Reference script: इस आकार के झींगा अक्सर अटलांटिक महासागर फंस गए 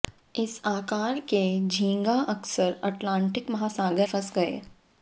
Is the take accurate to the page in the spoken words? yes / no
yes